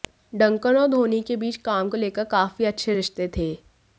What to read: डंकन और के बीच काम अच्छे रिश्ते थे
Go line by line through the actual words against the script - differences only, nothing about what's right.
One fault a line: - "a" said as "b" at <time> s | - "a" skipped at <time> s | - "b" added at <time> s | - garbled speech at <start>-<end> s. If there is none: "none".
- "धोनी" added at 0.9 s
- "को लेकर काफी" added at 1.9 s